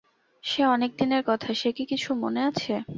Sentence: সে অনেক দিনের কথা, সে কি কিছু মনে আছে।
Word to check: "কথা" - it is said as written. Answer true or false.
true